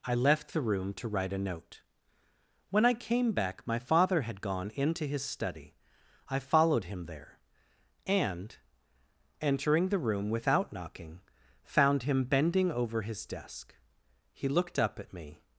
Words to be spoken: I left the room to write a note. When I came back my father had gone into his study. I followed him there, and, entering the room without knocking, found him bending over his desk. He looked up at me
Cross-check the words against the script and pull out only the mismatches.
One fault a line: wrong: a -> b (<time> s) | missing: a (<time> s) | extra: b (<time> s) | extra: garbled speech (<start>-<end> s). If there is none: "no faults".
no faults